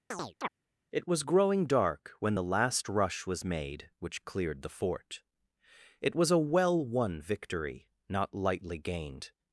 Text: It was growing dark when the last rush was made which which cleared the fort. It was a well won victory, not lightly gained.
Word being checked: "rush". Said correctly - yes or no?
yes